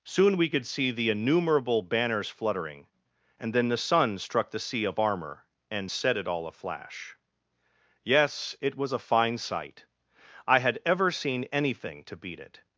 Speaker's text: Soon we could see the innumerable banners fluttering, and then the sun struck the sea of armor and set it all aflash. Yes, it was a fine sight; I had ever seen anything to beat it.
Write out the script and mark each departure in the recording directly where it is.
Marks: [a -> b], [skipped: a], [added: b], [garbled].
Soon we could see the innumerable banners fluttering, and then the sun struck the sea of armor and set it all aflash. Yes, it was a fine sight; I had ever seen anything to beat it.